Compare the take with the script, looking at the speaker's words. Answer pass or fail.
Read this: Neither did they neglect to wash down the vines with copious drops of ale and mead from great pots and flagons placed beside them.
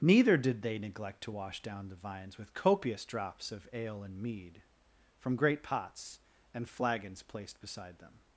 pass